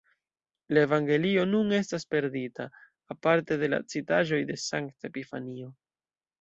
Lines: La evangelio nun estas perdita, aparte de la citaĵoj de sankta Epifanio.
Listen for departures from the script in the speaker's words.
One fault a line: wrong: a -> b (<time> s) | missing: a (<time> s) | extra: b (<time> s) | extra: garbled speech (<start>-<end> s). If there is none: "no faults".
no faults